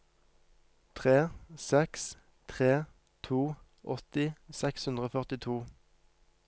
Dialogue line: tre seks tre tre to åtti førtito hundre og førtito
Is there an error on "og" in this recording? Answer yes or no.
no